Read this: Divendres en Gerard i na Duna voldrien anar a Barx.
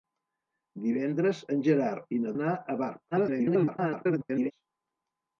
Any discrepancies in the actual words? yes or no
yes